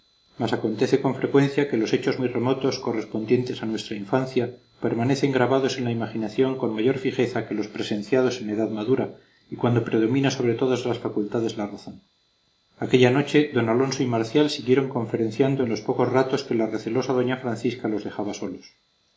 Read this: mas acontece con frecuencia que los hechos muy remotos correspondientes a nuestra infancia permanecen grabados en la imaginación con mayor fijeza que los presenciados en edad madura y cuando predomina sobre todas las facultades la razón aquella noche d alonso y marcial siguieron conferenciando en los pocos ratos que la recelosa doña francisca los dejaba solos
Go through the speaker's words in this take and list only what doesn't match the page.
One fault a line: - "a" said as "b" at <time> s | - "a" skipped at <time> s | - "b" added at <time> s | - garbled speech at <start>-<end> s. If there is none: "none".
none